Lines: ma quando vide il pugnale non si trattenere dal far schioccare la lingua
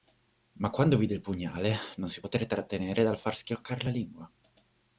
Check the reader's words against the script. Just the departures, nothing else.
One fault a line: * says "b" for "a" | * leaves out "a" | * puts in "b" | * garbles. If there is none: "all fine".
* puts in "poté"